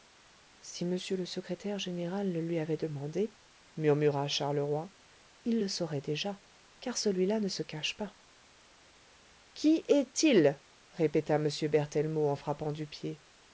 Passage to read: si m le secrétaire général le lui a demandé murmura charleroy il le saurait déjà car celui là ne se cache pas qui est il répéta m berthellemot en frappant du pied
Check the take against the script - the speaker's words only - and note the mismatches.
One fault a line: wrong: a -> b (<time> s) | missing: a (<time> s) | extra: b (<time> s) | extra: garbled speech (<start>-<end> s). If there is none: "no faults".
wrong: a -> avait (2.6 s)